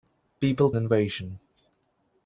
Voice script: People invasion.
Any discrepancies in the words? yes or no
no